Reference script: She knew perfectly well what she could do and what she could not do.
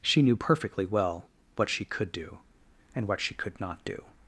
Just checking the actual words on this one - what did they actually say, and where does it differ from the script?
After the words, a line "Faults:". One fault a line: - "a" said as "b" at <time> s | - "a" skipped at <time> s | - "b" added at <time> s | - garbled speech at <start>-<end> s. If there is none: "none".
She knew perfectly well what she could do and what she could not do.
Faults:
none